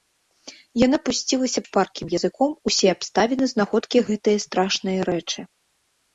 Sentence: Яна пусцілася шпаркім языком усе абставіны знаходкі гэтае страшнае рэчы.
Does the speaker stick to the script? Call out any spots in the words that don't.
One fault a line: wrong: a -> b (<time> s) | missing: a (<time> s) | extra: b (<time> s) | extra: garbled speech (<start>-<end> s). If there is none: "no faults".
no faults